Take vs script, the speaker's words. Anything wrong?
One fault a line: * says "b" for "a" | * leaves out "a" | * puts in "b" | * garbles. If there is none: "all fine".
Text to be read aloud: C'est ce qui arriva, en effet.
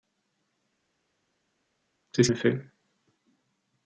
* leaves out "qui arriva en"